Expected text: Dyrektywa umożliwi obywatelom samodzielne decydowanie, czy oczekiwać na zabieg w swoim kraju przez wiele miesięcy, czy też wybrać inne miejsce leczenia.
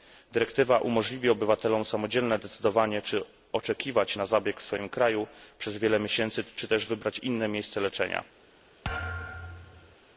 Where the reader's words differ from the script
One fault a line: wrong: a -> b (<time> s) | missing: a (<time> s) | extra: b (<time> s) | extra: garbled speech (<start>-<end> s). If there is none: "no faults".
no faults